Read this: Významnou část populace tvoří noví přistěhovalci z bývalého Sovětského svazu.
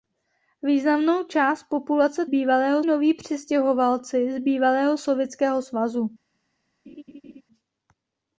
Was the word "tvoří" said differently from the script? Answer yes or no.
yes